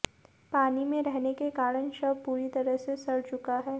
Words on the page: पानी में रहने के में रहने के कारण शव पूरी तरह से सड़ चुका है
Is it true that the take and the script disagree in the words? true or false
true